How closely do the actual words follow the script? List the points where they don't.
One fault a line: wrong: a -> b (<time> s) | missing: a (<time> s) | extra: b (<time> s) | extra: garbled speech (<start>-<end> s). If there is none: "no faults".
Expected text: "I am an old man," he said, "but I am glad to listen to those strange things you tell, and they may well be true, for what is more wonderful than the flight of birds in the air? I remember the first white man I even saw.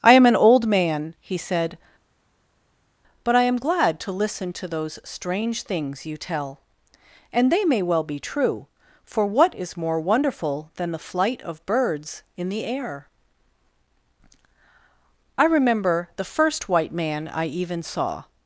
no faults